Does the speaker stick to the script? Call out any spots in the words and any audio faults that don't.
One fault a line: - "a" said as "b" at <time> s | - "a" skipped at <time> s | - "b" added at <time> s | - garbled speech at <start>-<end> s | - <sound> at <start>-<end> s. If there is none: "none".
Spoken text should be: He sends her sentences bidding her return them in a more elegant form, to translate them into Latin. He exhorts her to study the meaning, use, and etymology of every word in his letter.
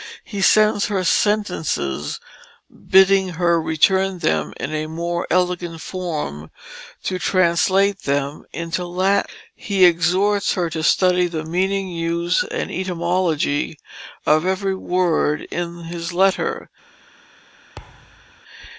- thud at 17.8-18.4 s